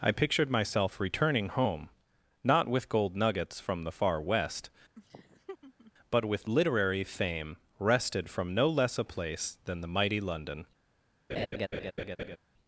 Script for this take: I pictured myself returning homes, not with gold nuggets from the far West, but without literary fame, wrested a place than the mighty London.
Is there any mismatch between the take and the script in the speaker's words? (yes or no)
yes